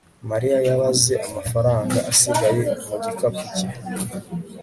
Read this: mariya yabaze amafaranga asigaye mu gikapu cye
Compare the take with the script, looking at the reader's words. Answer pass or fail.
pass